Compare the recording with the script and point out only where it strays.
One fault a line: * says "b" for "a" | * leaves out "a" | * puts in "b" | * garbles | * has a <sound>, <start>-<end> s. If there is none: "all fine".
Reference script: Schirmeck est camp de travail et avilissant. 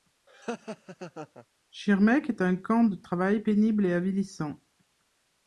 * has a laugh, 0.3-1.5 s
* puts in "un"
* puts in "pénible"